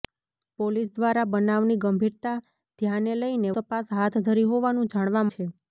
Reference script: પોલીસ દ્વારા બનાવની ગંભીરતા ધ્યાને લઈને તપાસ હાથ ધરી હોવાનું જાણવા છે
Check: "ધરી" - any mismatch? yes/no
no